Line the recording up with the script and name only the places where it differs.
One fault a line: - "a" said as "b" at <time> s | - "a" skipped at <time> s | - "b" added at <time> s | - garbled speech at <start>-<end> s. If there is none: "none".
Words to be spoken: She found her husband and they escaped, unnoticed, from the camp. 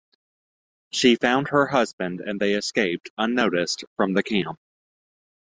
none